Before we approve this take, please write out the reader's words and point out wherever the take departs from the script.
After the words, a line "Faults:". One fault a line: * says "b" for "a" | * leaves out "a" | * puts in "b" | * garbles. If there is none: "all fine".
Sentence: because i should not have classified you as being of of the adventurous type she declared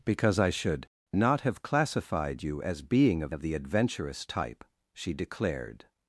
because i should not have classified you as being of of the adventurous type she declared
Faults:
all fine